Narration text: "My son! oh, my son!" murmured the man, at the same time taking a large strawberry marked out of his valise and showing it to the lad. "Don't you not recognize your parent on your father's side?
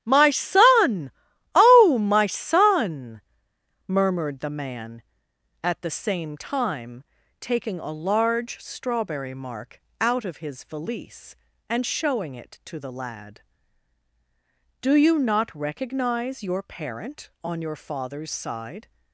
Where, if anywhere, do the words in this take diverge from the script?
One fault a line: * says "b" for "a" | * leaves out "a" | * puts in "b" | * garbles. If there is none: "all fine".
* says "mark" for "marked"
* says "Do" for "Don't"